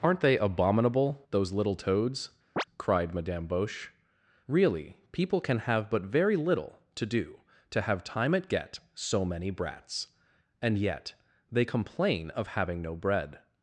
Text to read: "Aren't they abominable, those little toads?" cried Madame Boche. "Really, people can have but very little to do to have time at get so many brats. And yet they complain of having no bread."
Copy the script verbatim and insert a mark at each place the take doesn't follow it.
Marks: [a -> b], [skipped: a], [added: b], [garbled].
"Aren't they abominable, those little toads?" cried Madame Boche. "Really, people can have but very little to do to have time at get so many brats. And yet they complain of having no bread."